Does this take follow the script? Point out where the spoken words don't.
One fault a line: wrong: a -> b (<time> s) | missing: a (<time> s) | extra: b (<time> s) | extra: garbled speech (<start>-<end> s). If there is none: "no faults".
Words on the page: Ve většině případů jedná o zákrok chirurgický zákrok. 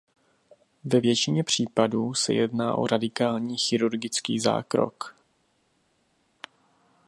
extra: se (2.1 s)
wrong: zákrok -> radikální (2.9 s)